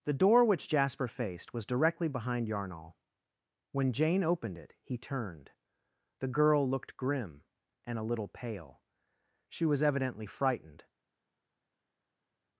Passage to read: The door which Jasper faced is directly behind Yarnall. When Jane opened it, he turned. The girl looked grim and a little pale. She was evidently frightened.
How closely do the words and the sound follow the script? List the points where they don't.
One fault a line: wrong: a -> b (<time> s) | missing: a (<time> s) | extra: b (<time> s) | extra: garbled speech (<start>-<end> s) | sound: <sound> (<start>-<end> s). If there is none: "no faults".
wrong: is -> was (1.5 s)